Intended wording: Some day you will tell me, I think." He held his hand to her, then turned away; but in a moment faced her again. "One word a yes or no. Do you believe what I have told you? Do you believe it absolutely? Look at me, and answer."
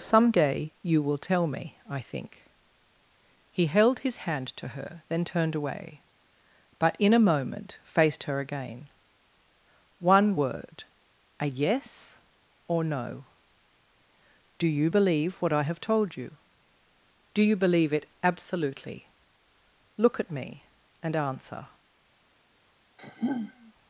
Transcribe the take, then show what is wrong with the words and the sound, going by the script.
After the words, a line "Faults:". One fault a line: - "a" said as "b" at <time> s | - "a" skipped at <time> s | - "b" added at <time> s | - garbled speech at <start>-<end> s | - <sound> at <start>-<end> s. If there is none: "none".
Some day you will tell me, I think." He held his hand to her, then turned away; but in a moment faced her again. "One word a yes or no. Do you believe what I have told you? Do you believe it absolutely? Look at me, and answer."
Faults:
- sigh at 23.0-23.7 s